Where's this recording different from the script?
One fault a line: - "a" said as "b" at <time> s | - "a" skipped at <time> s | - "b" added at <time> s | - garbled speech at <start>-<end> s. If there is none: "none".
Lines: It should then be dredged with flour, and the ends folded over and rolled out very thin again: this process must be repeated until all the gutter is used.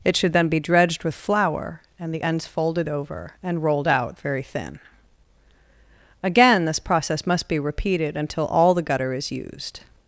none